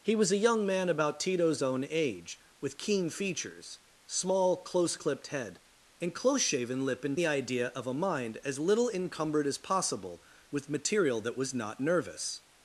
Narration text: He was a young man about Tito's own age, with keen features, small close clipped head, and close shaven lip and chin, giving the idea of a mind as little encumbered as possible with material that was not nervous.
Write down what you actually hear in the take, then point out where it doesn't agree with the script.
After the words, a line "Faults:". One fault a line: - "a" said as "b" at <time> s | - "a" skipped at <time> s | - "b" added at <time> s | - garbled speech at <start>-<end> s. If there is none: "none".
He was a young man about Tito's own age, with keen features, small close clipped head, and close shaven lip and the idea of a mind as little encumbered as possible with material that was not nervous.
Faults:
- "chin giving" skipped at 7.2 s